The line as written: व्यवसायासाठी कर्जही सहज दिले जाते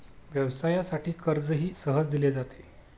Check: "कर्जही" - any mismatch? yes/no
no